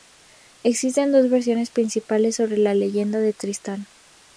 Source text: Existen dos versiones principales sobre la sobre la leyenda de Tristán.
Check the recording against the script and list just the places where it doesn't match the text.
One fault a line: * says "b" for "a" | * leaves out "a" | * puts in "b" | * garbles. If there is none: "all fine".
* leaves out "sobre la"